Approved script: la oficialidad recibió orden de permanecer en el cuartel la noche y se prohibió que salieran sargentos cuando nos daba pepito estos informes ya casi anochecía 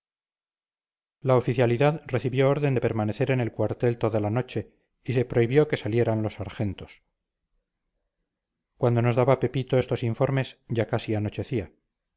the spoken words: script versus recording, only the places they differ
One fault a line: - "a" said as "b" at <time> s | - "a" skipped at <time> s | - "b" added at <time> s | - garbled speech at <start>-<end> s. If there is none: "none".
- "toda" added at 4.0 s
- "los" added at 6.2 s